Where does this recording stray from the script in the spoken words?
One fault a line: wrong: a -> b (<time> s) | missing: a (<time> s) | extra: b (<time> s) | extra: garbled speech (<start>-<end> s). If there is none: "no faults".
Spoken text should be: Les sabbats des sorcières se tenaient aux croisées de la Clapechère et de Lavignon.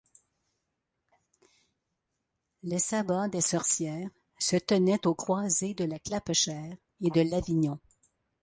no faults